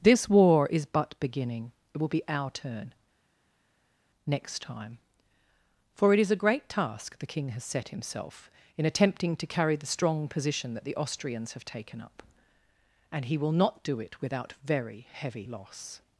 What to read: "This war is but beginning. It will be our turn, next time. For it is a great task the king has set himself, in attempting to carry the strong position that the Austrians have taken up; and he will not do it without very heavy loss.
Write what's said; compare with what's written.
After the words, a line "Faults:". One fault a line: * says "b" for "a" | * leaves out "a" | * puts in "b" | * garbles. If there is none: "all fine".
"This war is but beginning. It will be our turn, next time. For it is a great task the king has set himself, in attempting to carry the strong position that the Austrians have taken up; and he will not do it without very heavy loss.
Faults:
all fine